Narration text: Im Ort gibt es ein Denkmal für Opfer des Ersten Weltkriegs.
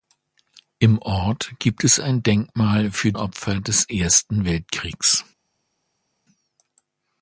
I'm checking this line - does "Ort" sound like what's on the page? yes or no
yes